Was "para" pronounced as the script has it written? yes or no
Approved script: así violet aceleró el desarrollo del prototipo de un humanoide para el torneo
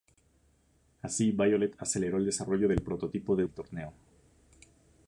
no